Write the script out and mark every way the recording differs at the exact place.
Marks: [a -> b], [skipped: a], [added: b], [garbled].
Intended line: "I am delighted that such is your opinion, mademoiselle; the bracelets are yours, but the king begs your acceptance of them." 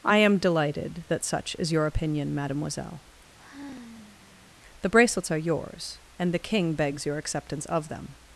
"I am delighted that such is your opinion, mademoiselle; the bracelets are yours, [but -> and] the king begs your acceptance of them."